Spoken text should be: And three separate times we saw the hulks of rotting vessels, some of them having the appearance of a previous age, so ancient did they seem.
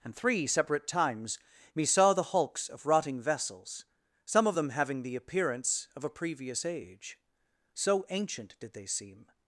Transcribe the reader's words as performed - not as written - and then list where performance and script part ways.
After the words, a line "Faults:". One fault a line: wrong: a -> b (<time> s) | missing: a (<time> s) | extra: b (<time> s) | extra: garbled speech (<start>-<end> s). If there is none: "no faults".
And three separate times me saw the hulks of rotting vessels, some of them having the appearance of a previous age, so ancient did they seem.
Faults:
wrong: we -> me (1.8 s)